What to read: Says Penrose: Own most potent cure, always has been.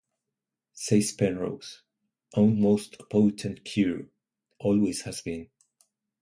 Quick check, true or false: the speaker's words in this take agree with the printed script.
true